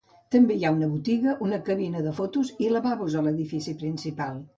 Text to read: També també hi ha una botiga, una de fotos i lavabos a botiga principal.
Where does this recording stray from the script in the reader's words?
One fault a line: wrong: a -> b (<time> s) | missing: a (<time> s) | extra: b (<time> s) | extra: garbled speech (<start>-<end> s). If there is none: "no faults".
missing: també (0.6 s)
extra: cabina (1.7 s)
wrong: botiga -> l'edifici (3.3 s)